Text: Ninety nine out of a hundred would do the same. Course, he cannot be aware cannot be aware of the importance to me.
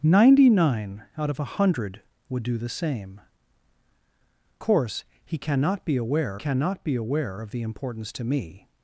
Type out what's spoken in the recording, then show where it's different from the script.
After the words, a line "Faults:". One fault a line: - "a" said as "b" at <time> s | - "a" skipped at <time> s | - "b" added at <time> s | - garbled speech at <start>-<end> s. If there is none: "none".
Ninety nine out of a hundred would do the same. Course, he cannot be aware cannot be aware of the importance to me.
Faults:
none